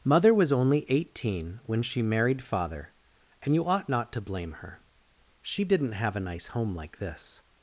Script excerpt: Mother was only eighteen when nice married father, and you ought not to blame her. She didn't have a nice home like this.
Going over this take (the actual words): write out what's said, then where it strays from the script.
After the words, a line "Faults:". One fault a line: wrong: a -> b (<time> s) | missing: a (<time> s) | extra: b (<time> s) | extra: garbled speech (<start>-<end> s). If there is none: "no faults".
Mother was only eighteen when she married father, and you ought not to blame her. She didn't have a nice home like this.
Faults:
wrong: nice -> she (1.8 s)